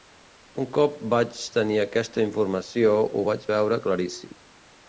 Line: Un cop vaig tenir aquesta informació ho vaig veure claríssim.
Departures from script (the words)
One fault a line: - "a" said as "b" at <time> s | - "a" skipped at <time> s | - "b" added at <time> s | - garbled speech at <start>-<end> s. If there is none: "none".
none